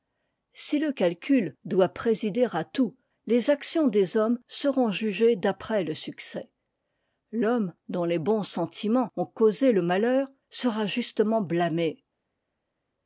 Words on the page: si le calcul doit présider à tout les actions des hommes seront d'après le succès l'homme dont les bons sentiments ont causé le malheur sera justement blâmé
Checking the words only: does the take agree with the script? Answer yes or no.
no